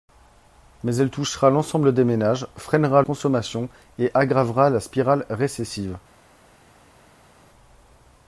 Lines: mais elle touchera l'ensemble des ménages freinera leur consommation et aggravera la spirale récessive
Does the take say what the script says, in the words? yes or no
no